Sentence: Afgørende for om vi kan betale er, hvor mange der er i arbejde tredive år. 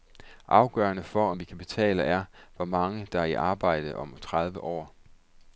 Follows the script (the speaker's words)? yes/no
no